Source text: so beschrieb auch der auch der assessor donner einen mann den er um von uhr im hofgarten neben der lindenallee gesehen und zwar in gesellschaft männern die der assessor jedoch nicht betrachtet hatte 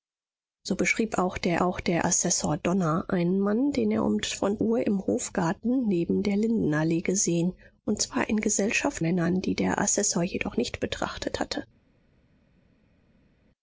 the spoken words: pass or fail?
pass